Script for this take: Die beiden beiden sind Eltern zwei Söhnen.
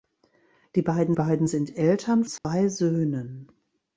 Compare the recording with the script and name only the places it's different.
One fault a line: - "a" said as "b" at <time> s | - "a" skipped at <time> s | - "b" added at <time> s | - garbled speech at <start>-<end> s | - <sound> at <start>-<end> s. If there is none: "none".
- dropout at 2.4-2.4 s